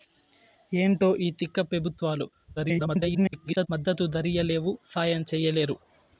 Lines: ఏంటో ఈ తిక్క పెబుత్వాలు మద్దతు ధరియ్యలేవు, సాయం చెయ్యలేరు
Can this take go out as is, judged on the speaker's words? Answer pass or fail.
fail